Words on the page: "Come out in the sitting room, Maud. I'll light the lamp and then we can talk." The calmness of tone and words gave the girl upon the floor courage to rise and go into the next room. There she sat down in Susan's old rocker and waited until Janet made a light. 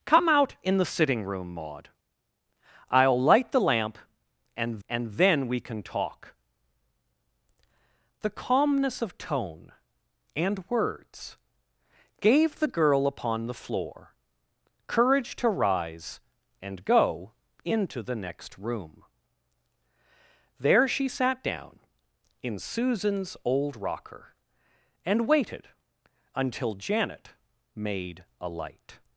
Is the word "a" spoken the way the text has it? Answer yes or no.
yes